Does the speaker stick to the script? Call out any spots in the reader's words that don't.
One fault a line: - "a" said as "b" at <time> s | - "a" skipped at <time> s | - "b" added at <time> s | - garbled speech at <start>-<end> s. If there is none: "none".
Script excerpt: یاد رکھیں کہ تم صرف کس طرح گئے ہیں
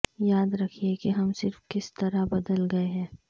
- "تم" said as "ہم" at 1.1 s
- "بدل" added at 2.3 s